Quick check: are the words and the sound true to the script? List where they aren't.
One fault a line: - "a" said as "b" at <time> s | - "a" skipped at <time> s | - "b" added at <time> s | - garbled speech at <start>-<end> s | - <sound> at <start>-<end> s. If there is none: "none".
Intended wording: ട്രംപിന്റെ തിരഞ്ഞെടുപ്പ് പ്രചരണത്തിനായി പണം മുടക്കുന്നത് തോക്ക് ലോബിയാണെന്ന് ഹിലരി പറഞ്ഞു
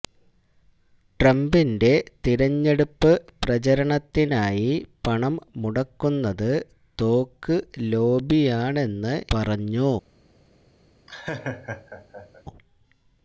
- "ഹിലരി" skipped at 9.1 s
- laugh at 11.1-12.4 s